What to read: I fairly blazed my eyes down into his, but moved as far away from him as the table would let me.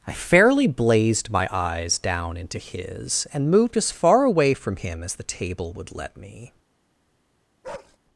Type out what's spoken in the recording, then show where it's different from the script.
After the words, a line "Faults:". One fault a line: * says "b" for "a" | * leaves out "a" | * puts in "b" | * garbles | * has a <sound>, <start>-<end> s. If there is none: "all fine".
I fairly blazed my eyes down into his, and moved as far away from him as the table would let me.
Faults:
* says "and" for "but"
* has a bark, 7.6-8.0 s